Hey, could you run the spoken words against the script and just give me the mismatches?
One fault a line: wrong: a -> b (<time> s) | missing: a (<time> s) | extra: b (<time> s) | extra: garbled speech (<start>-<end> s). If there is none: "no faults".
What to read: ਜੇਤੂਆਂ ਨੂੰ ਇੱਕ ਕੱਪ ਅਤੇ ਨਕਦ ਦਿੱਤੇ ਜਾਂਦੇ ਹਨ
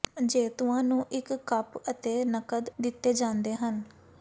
no faults